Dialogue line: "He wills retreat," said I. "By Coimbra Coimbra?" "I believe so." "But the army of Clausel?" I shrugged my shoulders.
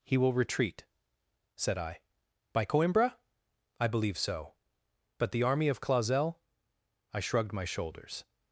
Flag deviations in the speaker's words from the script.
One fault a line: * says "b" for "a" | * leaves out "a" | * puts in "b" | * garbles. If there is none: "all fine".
* says "will" for "wills"
* leaves out "Coimbra"